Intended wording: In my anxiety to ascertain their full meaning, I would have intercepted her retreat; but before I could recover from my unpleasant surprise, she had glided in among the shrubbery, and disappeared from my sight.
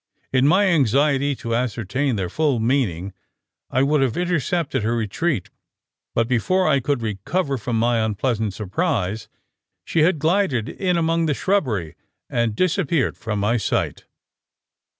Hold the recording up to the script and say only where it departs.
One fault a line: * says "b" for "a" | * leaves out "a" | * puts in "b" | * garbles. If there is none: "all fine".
all fine